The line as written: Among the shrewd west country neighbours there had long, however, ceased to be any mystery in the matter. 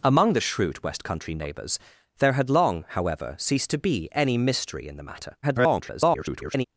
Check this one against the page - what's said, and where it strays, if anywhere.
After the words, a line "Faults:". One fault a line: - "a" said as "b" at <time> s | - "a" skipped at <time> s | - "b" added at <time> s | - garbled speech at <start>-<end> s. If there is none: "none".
Among the shrewd west country neighbours there had long, however, ceased to be any mystery in the matter. [garbled]
Faults:
- garbled speech at 5.4-6.6 s